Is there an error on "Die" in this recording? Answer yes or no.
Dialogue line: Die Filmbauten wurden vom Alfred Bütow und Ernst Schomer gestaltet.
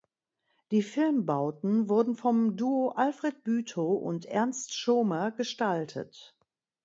no